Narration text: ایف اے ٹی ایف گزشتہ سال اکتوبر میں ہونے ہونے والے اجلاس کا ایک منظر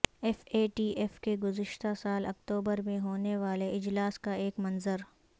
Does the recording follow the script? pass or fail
fail